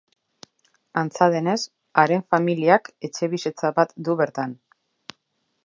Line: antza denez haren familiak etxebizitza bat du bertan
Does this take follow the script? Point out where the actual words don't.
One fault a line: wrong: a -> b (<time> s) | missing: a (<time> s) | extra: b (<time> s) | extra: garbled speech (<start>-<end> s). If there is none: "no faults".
no faults